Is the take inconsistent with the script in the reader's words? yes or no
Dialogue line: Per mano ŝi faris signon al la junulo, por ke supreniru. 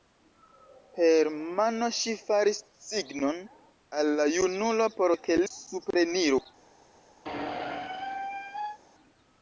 no